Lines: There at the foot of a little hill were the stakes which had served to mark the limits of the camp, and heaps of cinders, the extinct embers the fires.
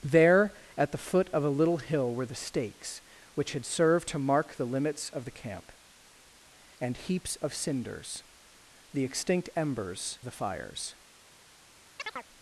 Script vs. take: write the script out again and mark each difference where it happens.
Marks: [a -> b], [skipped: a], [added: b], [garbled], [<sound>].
There at the foot of a little hill were the stakes which had served to mark the limits of the camp, and heaps of cinders, the extinct embers the fires. [chirp]